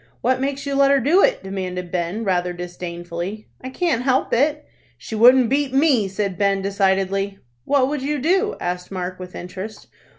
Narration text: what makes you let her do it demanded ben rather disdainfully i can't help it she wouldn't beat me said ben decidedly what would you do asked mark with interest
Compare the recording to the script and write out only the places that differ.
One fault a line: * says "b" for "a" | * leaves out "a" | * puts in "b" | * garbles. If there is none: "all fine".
all fine